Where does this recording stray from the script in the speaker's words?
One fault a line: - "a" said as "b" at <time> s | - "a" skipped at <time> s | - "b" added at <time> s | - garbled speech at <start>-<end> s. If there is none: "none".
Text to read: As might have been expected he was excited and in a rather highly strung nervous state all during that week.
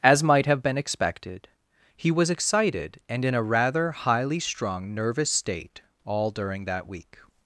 none